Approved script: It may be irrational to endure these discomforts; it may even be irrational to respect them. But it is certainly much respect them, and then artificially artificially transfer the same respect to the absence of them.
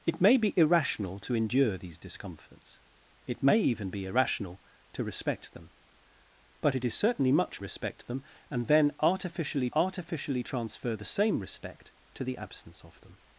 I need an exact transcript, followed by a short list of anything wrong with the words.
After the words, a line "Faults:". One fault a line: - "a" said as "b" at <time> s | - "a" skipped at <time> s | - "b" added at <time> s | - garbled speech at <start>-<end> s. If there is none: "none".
It may be irrational to endure these discomforts; it may even be irrational to respect them. But it is certainly much respect them, and then artificially artificially transfer the same respect to the absence of them.
Faults:
none